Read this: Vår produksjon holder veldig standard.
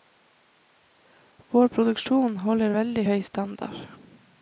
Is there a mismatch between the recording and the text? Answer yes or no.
yes